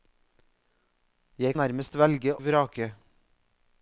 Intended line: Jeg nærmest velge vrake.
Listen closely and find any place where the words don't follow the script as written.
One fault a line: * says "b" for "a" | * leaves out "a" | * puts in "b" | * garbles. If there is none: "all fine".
all fine